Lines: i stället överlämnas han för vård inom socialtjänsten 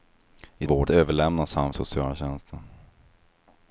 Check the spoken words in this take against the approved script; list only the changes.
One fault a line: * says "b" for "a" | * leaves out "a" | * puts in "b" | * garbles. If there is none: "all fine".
* says "vård" for "stället"
* leaves out "för vård inom"